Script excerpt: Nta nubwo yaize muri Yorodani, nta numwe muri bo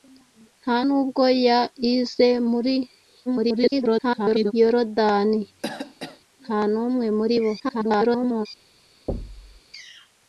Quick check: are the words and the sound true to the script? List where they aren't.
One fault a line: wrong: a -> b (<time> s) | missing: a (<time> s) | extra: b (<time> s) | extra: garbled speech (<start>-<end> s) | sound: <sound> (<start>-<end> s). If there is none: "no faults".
extra: garbled speech (3.3-4.5 s)
sound: cough (5.6-6.2 s)
extra: garbled speech (7.6-8.5 s)
sound: thud (9.1-9.6 s)